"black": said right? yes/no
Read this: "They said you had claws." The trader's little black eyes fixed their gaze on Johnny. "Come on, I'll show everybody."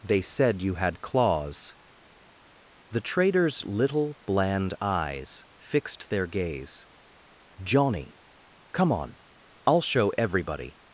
no